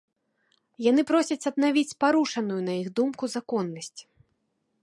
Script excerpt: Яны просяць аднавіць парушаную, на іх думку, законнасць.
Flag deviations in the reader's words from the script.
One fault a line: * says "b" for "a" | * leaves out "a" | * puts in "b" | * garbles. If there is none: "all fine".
all fine